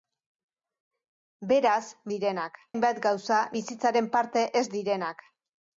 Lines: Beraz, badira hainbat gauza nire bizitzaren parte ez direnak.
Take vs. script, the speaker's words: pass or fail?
fail